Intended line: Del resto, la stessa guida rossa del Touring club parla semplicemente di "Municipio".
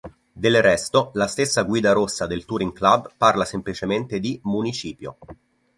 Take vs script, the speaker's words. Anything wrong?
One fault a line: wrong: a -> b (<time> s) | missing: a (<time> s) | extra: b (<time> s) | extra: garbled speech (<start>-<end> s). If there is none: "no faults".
no faults